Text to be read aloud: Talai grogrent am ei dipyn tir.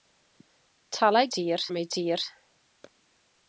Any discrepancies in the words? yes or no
yes